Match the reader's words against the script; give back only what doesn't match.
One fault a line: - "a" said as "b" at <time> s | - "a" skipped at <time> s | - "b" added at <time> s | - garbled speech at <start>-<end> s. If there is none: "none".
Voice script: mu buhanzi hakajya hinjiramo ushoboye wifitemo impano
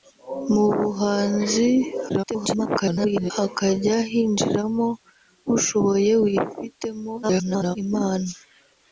- garbled speech at 2.1-3.3 s
- garbled speech at 7.2-7.8 s